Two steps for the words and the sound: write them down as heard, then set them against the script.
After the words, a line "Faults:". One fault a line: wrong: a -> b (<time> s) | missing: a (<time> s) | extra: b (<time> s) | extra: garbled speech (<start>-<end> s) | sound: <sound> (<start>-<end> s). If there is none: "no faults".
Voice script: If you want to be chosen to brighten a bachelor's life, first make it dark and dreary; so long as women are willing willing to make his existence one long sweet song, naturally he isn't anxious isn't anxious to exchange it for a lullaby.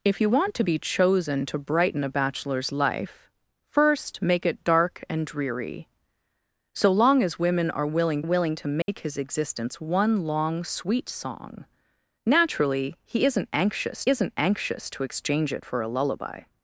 If you want to be chosen to brighten a bachelor's life, first make it dark and dreary; so long as women are willing willing to make his existence one long sweet song, naturally he isn't anxious isn't anxious to exchange it for a lullaby.
Faults:
sound: dropout (8.8-8.9 s)